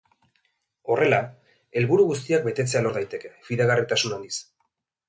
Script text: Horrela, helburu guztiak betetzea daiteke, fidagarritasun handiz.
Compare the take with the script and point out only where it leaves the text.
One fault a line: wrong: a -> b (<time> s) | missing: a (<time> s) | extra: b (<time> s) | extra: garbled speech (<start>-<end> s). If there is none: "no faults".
extra: lor (2.9 s)